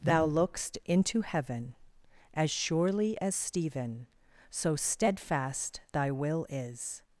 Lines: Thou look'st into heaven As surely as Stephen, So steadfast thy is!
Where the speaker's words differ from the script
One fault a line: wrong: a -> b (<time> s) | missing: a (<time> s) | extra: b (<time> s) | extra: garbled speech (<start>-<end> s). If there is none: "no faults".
extra: will (6.1 s)